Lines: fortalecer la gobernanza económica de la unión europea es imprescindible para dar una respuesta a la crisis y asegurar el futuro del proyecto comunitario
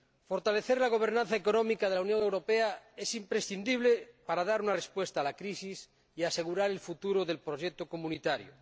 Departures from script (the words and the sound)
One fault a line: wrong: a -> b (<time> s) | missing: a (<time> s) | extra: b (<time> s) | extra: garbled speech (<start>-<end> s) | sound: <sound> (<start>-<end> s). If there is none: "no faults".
no faults